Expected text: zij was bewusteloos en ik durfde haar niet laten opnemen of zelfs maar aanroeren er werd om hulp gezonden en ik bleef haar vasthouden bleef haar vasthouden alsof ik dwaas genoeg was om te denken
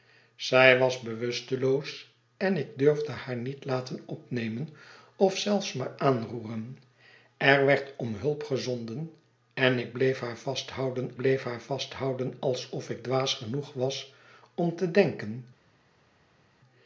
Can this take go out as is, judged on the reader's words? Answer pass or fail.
pass